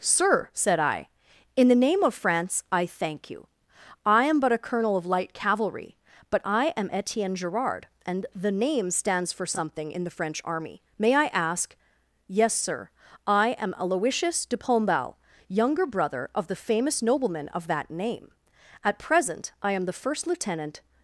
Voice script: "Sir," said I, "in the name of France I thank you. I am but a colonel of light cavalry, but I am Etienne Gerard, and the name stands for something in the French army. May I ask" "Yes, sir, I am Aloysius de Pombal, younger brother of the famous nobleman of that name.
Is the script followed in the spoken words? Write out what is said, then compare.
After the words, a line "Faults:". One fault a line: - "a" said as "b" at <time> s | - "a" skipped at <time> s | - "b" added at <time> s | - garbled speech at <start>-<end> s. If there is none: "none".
"Sir," said I, "in the name of France I thank you. I am but a colonel of light cavalry, but I am Etienne Gerard, and the name stands for something in the French army. May I ask" "Yes, sir, I am Aloysius de Pombal, younger brother of the famous nobleman of that name. At present I am the first lieutenant
Faults:
- "At present I am the first lieutenant" added at 18.8 s